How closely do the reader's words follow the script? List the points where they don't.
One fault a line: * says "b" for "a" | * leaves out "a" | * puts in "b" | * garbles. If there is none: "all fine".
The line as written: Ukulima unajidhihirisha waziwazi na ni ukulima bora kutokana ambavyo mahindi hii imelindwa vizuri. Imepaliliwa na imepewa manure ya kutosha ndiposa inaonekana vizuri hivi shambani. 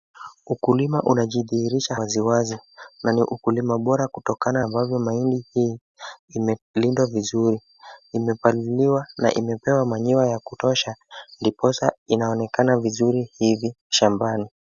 all fine